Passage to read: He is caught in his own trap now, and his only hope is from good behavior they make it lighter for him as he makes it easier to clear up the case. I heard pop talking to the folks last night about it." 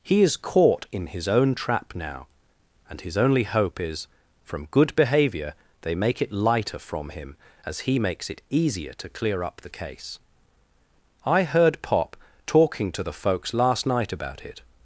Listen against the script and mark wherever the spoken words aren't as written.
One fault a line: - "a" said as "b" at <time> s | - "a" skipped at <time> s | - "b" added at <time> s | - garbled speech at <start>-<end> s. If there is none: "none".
- "for" said as "from" at 6.8 s